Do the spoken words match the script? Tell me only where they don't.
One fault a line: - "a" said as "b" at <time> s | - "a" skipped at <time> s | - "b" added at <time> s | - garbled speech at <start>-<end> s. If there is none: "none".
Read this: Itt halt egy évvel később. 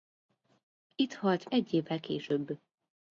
none